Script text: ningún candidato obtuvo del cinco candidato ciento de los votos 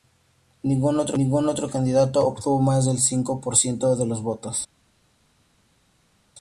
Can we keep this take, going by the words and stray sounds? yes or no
no